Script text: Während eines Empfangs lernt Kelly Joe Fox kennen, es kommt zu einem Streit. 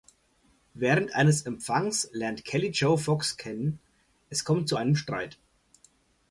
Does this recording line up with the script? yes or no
yes